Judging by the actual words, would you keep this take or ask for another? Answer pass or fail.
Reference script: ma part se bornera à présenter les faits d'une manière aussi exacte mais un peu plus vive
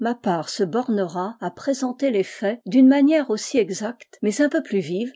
pass